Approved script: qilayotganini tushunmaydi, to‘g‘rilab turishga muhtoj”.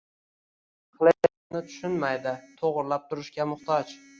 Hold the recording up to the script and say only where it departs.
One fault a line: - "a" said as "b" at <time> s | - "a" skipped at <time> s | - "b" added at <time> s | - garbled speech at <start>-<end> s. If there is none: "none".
none